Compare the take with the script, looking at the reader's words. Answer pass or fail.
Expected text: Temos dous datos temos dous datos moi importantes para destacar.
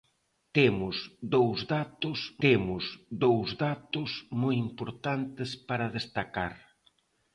pass